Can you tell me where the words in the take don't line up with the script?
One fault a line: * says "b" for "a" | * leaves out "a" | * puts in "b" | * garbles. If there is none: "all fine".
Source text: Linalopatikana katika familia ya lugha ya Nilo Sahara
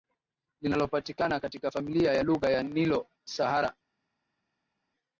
all fine